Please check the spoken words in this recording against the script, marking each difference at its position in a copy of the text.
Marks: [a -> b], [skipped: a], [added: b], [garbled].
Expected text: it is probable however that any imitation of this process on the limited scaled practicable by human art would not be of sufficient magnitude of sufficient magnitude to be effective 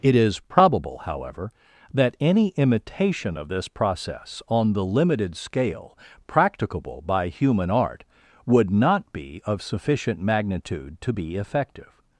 it is probable however that any imitation of this process on the limited [scaled -> scale] practicable by human art would not be of sufficient magnitude [skipped: of sufficient magnitude] to be effective